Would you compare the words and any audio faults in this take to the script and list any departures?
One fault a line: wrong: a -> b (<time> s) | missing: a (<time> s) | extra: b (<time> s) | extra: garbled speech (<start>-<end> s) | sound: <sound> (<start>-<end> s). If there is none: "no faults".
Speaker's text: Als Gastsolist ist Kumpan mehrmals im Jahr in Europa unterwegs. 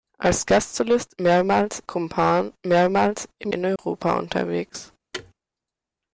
wrong: ist -> mehrmals (1.2 s)
missing: Jahr (3.5 s)
sound: dropout (3.8-3.8 s)
sound: thud (5.1-5.3 s)